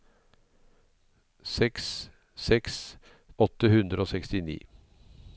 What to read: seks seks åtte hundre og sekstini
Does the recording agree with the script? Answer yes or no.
yes